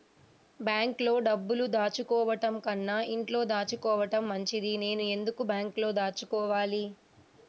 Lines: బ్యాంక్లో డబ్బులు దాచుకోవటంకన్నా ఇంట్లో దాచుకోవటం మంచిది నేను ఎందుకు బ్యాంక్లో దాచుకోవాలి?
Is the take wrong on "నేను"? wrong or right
right